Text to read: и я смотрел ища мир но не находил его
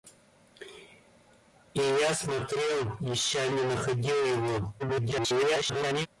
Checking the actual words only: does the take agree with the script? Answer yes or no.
no